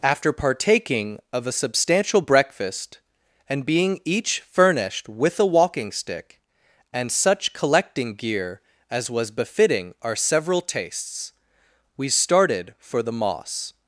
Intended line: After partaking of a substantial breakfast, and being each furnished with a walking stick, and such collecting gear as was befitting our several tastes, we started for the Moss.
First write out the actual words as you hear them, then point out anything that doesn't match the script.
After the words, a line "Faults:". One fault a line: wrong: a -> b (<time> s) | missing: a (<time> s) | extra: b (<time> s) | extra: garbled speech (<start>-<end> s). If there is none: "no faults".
After partaking of a substantial breakfast, and being each furnished with a walking stick, and such collecting gear as was befitting our several tastes, we started for the Moss.
Faults:
no faults